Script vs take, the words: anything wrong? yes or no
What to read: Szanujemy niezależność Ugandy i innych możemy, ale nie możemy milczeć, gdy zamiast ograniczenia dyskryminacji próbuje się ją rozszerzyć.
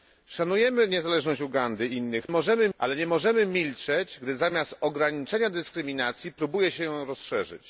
no